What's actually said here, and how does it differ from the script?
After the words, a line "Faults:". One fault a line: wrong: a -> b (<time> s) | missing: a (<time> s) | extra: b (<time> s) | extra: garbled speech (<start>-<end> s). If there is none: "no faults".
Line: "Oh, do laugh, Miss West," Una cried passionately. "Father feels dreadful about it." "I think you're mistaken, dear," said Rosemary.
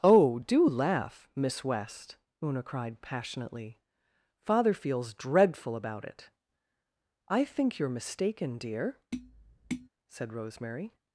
"Oh, do laugh, Miss West," Una cried passionately. "Father feels dreadful about it." "I think you're mistaken, dear," said Rosemary.
Faults:
no faults